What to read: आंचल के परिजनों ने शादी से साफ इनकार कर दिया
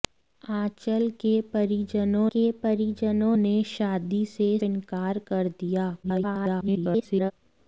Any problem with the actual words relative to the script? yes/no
yes